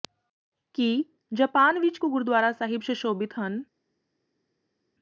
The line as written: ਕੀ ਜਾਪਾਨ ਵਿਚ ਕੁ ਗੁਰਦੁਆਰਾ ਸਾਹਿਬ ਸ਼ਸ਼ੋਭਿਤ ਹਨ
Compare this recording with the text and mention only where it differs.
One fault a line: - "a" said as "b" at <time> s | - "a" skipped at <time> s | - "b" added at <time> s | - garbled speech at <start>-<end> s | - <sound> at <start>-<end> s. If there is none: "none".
none